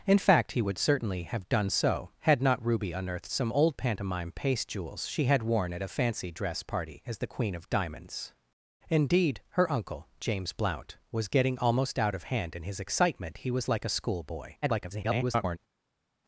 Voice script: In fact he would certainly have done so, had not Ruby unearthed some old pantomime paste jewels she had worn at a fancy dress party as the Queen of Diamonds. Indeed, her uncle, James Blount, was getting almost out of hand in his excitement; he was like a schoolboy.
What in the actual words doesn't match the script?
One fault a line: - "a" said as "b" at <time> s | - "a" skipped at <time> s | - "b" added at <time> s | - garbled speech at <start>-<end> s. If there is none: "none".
- garbled speech at 14.6-15.6 s